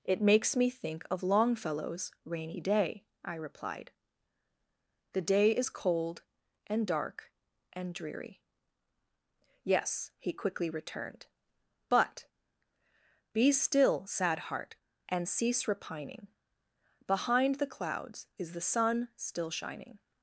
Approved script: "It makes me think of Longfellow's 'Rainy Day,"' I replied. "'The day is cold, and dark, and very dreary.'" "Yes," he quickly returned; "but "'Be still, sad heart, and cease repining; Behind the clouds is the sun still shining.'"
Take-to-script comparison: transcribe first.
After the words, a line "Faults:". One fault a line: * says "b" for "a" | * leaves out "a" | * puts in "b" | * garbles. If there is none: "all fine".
"It makes me think of Longfellow's 'Rainy Day,"' I replied. "'The day is cold, and dark, and dreary.'" "Yes," he quickly returned; "but "'Be still, sad heart, and cease repining; Behind the clouds is the sun still shining.'"
Faults:
* leaves out "very"